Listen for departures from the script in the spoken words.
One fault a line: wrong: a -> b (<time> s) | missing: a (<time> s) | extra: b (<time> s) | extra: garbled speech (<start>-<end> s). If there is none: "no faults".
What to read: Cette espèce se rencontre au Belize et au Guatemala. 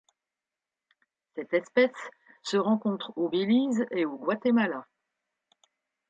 no faults